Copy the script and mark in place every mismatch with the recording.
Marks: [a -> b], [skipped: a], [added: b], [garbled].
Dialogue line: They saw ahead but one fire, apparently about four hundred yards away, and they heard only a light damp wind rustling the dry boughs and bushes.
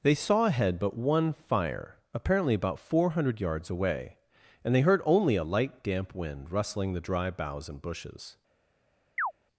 They saw ahead but one fire, apparently about four hundred yards away, and they heard only a light damp wind rustling the dry boughs and bushes.